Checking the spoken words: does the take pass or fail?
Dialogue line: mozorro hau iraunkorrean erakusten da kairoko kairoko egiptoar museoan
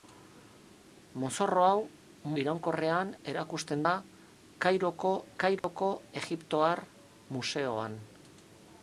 pass